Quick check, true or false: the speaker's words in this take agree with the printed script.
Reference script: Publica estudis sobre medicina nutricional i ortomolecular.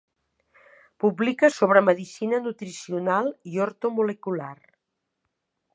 false